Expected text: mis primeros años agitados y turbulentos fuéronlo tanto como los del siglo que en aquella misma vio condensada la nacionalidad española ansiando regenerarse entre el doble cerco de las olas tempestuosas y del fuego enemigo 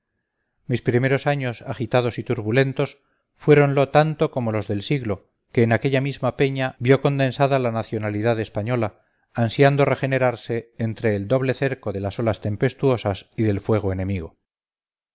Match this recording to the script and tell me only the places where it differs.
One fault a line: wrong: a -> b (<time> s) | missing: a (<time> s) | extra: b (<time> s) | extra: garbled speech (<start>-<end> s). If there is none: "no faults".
extra: peña (6.4 s)